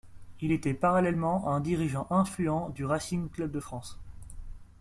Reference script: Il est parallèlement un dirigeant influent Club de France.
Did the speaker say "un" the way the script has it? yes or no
yes